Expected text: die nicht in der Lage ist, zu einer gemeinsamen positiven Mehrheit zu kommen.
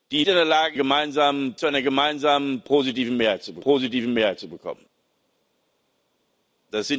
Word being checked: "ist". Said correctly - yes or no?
no